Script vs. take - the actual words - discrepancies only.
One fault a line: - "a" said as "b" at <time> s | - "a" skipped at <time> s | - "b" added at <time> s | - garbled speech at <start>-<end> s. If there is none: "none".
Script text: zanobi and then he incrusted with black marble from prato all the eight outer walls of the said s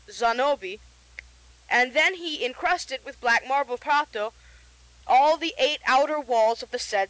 - "from" skipped at 3.8 s